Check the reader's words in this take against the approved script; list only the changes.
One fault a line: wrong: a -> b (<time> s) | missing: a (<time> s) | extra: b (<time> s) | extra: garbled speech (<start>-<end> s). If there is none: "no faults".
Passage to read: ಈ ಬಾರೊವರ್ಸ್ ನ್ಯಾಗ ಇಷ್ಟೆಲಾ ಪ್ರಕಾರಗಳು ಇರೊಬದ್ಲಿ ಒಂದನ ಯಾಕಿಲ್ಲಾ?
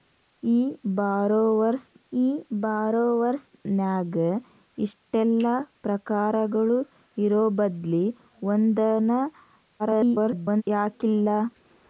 extra: ಈ ಬಾರೊವರ್ಸ್ (2.1 s)
extra: garbled speech (9.8-10.6 s)